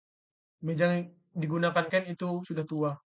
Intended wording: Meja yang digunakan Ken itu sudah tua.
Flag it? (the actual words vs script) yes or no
no